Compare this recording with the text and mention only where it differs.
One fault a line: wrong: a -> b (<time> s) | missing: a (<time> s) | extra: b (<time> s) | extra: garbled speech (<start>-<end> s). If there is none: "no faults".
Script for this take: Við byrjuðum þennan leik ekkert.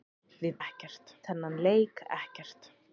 wrong: byrjuðum -> ekkert (0.7 s)